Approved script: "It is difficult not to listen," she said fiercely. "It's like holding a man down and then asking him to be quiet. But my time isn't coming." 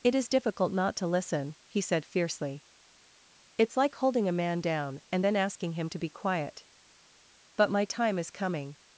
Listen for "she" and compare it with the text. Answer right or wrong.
wrong